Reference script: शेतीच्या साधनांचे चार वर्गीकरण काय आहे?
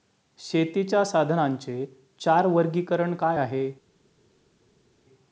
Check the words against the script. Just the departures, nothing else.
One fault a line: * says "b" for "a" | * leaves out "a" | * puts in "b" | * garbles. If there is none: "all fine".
all fine